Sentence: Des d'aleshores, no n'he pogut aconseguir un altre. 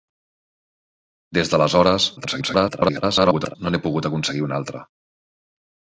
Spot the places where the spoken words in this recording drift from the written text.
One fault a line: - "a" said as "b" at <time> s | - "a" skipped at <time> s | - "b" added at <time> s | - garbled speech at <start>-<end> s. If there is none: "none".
- garbled speech at 2.2-3.6 s